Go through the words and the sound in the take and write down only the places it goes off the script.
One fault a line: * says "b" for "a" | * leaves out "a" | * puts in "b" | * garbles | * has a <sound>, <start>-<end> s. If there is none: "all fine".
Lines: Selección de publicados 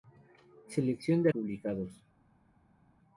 all fine